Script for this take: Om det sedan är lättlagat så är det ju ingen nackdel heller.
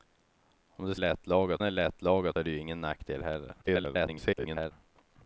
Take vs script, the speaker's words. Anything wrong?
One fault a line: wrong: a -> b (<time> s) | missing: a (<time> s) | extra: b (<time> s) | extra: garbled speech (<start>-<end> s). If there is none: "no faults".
wrong: sedan -> lättlagat (0.9 s)
missing: så (2.4 s)
extra: garbled speech (3.6-4.7 s)